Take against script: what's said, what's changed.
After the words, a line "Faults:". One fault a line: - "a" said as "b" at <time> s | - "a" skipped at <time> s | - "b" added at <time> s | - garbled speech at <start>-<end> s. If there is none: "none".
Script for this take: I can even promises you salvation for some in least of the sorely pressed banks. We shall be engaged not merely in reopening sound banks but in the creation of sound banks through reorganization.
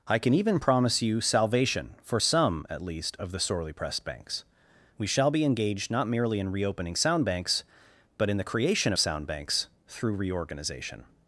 I can even promise you salvation for some at least of the sorely pressed banks. We shall be engaged not merely in reopening sound banks but in the creation of sound banks through reorganization.
Faults:
- "promises" said as "promise" at 0.6 s
- "in" said as "at" at 2.7 s